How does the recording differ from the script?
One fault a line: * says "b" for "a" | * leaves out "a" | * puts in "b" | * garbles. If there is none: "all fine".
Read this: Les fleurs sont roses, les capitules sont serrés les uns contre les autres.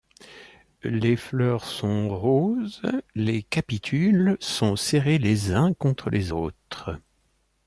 all fine